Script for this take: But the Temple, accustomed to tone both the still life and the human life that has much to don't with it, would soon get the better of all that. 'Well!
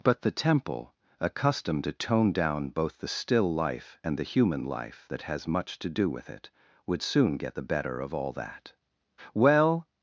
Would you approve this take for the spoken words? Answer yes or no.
no